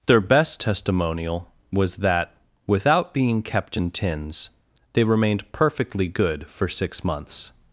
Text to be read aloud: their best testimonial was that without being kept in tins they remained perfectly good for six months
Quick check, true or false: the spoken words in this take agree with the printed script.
true